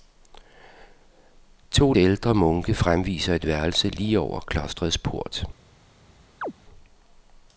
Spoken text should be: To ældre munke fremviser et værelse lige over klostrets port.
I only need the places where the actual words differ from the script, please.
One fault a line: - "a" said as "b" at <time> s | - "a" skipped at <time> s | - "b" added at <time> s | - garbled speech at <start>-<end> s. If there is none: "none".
none